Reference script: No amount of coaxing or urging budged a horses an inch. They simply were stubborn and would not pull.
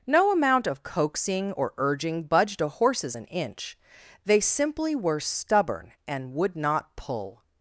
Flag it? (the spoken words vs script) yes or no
no